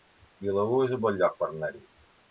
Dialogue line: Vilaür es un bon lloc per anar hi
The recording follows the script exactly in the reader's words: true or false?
true